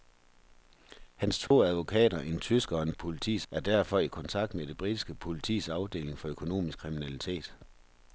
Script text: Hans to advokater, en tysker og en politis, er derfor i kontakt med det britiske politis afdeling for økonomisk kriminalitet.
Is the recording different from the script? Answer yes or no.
no